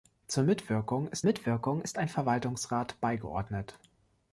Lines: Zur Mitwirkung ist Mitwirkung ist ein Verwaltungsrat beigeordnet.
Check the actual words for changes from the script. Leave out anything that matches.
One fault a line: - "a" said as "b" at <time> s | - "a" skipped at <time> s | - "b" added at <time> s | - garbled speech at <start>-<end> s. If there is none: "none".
none